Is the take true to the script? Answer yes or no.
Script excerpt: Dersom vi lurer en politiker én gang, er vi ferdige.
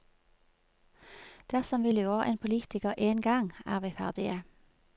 yes